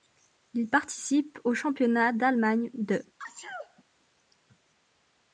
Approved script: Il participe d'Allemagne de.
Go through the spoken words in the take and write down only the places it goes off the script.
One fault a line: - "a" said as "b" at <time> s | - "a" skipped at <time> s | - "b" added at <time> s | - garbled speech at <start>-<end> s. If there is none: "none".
- "au Championnat" added at 1.4 s